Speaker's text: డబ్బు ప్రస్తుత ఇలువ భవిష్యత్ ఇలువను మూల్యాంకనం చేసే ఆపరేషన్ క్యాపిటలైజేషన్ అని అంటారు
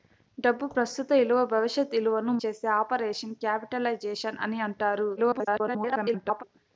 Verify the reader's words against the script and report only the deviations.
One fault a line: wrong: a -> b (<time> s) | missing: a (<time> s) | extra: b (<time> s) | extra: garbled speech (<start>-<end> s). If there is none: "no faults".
missing: మూల్యాంకనం (2.3 s)
extra: garbled speech (5.2-6.4 s)